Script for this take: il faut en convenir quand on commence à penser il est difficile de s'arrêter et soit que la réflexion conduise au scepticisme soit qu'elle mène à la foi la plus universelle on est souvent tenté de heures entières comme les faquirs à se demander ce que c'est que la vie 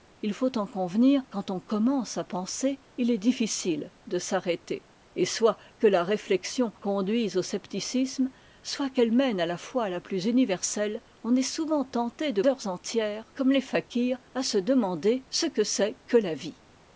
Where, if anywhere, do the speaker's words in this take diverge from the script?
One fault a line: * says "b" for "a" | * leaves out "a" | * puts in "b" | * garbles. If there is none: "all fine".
all fine